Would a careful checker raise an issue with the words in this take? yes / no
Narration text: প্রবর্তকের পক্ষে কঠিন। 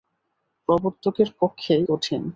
no